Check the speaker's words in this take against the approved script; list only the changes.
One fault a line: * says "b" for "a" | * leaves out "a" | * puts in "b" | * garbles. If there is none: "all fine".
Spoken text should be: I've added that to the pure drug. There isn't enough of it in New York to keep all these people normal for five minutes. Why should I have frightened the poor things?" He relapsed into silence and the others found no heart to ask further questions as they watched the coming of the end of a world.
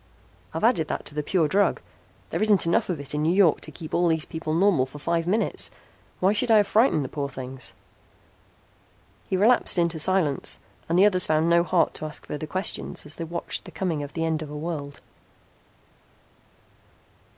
all fine